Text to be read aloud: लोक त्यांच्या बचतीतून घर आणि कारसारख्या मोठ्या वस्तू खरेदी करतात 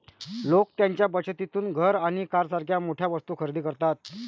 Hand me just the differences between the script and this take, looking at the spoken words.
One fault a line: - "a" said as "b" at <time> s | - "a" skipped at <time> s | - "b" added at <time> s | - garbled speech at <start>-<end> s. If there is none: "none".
none